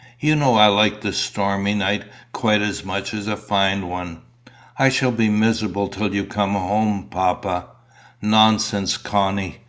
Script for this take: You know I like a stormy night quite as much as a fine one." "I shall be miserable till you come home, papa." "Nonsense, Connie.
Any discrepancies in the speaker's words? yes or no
no